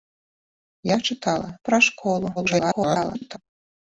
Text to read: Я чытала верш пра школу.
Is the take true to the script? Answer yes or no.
no